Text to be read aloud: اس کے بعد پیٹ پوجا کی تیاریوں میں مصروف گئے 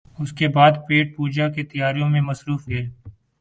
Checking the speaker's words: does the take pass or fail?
pass